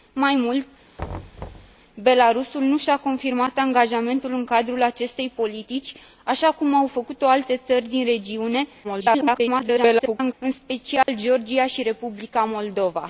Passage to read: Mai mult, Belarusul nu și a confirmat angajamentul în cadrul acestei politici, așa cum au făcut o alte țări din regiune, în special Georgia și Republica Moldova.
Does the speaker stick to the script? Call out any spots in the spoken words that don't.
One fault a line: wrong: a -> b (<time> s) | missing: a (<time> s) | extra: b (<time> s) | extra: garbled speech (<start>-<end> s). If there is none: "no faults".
extra: garbled speech (8.8-10.3 s)